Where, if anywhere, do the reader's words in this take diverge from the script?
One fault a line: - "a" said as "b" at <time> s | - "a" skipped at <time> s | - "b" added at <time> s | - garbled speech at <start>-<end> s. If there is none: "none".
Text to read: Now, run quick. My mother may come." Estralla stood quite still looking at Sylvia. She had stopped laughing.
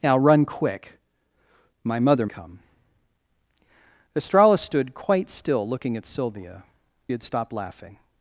- "may" skipped at 2.2 s
- "She" skipped at 6.6 s